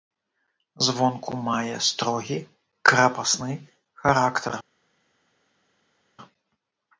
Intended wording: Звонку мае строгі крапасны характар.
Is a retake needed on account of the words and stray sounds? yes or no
no